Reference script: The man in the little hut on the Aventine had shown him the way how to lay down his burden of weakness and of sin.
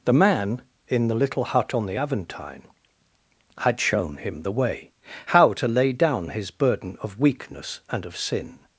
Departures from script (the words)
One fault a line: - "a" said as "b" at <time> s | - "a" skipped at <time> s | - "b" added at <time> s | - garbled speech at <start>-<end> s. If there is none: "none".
none